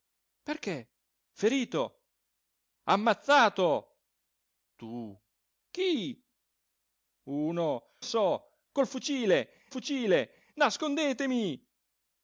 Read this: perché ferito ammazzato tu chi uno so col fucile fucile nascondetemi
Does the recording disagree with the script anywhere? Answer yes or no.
no